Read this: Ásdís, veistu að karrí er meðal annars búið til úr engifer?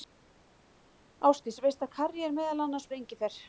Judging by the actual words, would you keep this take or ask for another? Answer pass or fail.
fail